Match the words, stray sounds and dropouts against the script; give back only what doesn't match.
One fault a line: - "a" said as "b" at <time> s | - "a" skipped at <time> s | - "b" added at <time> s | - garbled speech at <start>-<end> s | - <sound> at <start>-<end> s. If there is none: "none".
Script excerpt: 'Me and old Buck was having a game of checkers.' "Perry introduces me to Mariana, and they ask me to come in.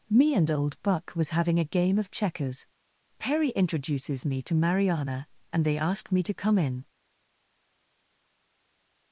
none